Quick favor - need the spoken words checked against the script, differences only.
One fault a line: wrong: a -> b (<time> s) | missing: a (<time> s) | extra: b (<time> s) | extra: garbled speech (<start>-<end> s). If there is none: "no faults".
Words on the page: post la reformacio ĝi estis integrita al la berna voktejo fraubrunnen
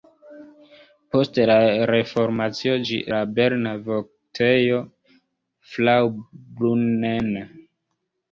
missing: estis integrita al (3.0 s)